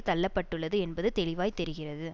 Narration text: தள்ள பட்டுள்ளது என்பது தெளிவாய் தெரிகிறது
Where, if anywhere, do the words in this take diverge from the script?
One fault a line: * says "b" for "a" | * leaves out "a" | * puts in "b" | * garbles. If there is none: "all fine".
all fine